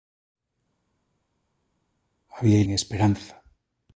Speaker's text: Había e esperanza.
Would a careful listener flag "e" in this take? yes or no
no